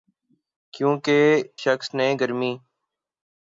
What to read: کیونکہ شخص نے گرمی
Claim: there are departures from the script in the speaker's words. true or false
false